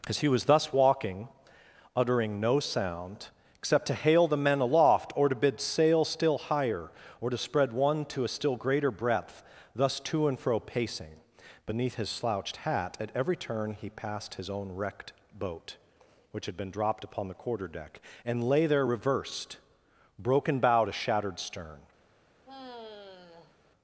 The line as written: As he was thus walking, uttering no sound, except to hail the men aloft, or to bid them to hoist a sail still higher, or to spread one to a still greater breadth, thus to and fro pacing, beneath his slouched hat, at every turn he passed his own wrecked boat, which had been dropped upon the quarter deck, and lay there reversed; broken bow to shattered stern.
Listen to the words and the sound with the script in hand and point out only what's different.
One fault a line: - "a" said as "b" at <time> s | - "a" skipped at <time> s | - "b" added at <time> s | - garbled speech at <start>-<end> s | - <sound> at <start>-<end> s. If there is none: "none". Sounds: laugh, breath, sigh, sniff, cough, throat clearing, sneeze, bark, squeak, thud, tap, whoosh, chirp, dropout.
- "them to hoist a" skipped at 5.6 s
- sigh at 22.4-23.6 s